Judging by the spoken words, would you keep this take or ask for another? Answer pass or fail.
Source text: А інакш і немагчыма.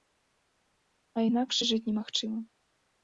fail